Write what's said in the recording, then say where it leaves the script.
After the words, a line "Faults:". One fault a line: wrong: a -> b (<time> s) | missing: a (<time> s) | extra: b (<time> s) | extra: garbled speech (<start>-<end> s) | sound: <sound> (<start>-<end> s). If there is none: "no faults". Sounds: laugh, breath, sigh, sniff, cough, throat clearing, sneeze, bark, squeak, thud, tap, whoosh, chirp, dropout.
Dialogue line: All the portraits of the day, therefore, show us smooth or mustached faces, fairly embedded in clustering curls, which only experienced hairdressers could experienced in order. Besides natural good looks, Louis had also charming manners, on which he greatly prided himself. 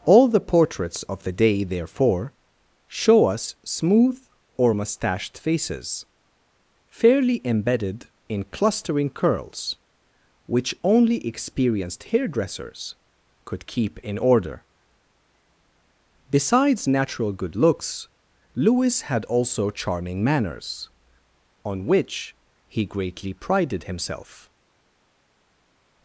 All the portraits of the day, therefore, show us smooth or mustached faces, fairly embedded in clustering curls, which only experienced hairdressers could keep in order. Besides natural good looks, Louis had also charming manners, on which he greatly prided himself.
Faults:
wrong: experienced -> keep (13.7 s)